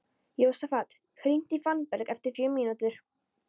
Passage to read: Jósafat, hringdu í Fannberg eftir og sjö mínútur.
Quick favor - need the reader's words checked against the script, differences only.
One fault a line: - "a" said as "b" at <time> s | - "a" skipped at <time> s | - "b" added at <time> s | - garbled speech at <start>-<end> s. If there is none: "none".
none